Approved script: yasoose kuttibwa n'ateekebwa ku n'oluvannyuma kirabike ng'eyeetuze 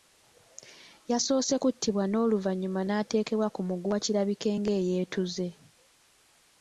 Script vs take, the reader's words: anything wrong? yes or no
yes